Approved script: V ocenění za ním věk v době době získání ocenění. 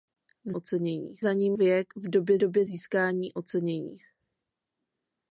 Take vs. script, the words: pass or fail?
pass